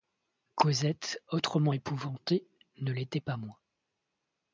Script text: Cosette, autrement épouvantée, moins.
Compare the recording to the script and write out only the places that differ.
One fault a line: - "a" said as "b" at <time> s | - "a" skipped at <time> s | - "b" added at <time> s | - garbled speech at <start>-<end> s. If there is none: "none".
- "ne l'était pas" added at 2.8 s